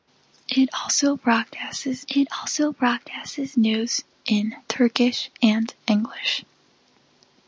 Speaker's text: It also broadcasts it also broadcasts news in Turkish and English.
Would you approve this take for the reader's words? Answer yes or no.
yes